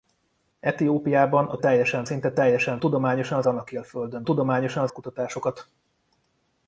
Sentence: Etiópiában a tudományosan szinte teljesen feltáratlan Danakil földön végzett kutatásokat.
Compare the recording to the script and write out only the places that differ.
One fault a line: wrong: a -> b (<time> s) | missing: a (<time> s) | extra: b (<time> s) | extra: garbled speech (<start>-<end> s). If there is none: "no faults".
wrong: tudományosan -> teljesen (1.6 s)
wrong: feltáratlan -> tudományosan (2.8 s)
wrong: végzett -> tudományosan (4.2 s)